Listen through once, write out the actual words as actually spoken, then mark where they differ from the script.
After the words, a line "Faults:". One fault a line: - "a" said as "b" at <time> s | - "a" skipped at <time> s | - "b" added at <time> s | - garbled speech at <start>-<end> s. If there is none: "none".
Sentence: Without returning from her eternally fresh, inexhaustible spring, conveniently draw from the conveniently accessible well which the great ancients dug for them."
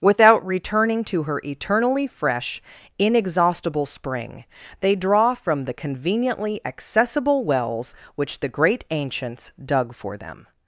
Without returning to her eternally fresh, inexhaustible spring, they draw from the conveniently accessible wells which the great ancients dug for them."
Faults:
- "from" said as "to" at 1.0 s
- "conveniently" said as "they" at 4.8 s
- "well" said as "wells" at 7.4 s